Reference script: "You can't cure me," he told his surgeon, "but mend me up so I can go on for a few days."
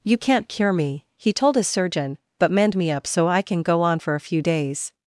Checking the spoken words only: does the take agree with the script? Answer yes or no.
yes